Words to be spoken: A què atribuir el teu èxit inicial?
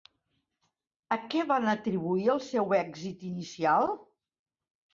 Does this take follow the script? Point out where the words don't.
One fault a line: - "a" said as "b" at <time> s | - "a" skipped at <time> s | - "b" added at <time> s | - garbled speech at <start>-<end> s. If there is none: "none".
- "van" added at 1.5 s
- "teu" said as "seu" at 2.5 s